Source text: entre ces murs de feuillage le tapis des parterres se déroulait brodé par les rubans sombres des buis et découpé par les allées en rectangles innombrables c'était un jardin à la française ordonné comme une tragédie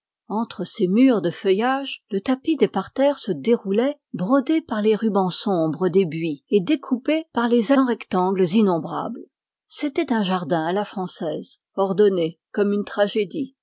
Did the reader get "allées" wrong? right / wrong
wrong